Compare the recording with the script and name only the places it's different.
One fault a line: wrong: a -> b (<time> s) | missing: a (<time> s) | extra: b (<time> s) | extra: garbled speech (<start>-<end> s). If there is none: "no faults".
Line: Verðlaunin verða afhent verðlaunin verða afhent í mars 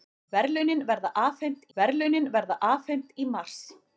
no faults